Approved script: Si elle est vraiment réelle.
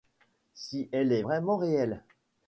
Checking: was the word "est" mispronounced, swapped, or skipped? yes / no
no